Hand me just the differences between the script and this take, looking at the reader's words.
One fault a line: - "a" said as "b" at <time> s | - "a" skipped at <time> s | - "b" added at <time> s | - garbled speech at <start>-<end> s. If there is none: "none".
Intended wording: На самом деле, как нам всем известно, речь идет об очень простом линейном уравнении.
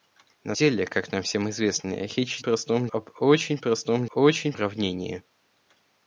- "самом" skipped at 0.6 s
- "идет" said as "простом" at 2.4 s
- "линейном" said as "очень" at 4.1 s